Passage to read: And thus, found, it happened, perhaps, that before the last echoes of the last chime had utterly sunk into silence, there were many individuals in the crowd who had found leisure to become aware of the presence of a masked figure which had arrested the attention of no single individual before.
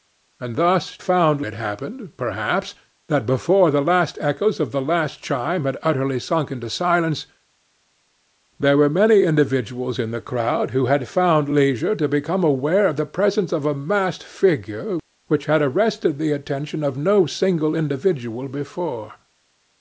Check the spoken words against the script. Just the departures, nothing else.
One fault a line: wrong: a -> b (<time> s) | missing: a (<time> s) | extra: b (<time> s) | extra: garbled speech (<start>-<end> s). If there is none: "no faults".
no faults